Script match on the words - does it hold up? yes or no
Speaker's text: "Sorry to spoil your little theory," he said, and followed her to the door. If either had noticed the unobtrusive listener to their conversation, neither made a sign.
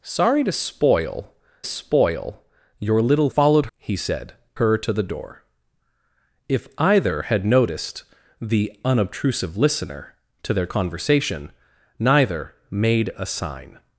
no